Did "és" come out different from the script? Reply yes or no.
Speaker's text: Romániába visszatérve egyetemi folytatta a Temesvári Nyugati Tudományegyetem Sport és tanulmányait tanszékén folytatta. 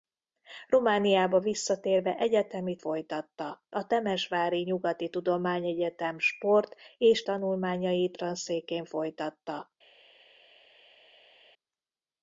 no